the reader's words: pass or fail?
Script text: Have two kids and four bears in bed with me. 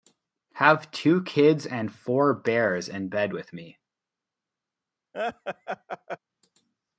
pass